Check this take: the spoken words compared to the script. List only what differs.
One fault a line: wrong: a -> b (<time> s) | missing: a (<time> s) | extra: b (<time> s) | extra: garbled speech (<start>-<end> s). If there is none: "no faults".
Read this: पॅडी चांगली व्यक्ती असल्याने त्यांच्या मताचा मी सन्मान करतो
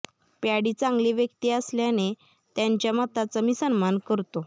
no faults